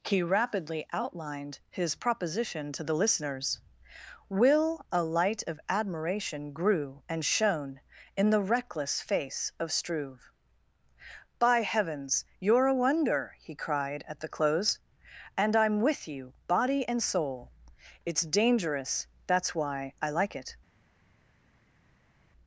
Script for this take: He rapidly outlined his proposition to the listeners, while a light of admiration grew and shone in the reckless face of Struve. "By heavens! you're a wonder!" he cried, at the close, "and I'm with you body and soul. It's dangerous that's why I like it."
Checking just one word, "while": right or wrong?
wrong